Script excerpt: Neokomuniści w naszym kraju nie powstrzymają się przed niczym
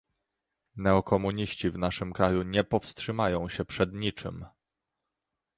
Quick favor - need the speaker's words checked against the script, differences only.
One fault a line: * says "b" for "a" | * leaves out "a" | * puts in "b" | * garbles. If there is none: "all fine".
all fine